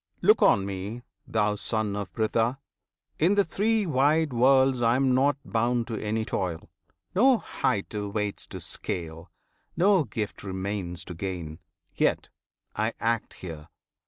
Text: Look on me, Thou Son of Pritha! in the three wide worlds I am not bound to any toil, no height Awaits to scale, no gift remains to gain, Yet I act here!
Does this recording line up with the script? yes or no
yes